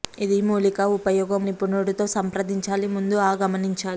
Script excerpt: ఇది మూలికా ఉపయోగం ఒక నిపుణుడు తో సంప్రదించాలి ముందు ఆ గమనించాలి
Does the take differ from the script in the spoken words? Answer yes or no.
yes